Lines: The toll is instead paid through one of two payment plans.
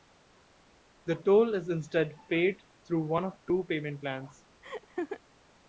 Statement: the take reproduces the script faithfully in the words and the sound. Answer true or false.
false